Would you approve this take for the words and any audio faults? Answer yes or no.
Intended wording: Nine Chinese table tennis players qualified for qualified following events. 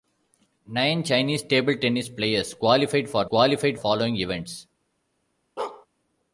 no